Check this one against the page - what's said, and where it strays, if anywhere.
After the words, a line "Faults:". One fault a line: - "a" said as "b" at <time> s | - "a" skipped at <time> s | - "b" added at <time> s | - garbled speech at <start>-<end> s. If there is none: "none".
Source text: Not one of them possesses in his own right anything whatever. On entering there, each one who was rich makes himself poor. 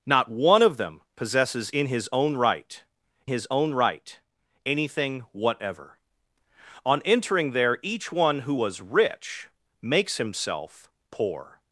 Not one of them possesses in his own right his own right anything whatever. On entering there, each one who was rich makes himself poor.
Faults:
- "his own right" added at 3.3 s